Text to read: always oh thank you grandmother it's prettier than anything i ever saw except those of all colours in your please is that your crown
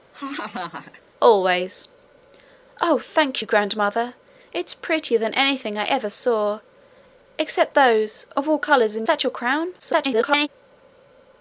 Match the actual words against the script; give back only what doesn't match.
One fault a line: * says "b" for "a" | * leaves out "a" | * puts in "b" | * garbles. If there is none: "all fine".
* leaves out "your please is"
* garbles